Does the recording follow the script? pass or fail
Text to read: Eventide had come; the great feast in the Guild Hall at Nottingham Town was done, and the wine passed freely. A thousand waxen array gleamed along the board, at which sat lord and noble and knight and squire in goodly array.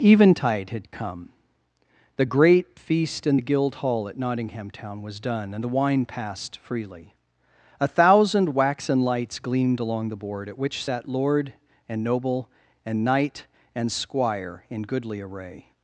fail